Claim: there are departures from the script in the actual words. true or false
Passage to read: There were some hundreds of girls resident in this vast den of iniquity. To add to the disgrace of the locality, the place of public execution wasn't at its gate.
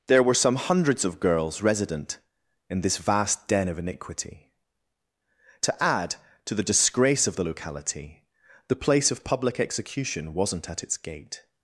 false